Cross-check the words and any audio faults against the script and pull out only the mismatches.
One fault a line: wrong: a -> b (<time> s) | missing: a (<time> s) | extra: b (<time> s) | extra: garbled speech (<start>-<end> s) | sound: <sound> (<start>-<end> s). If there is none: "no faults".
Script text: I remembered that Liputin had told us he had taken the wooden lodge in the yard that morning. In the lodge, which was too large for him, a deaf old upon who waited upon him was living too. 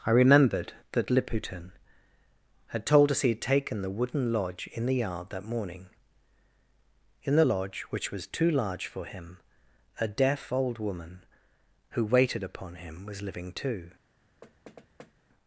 wrong: upon -> woman (10.8 s)
sound: thud (14.4-15.1 s)